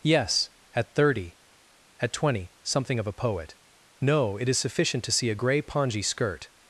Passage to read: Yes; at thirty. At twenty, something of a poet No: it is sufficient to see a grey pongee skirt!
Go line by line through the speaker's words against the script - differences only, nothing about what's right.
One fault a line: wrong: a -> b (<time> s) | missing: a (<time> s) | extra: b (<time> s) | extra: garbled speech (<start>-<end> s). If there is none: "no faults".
no faults